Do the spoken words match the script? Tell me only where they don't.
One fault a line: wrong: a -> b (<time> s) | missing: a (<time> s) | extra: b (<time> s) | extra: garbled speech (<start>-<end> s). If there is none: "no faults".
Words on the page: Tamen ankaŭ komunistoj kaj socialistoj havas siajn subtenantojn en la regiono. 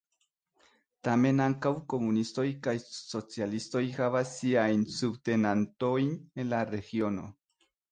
no faults